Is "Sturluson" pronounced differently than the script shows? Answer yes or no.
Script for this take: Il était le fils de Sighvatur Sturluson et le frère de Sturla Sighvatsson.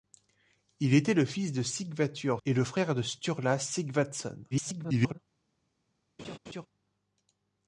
yes